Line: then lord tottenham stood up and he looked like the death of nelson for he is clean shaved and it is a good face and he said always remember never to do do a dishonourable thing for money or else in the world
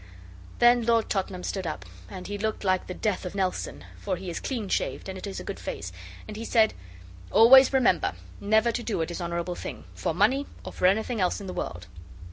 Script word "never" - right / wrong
right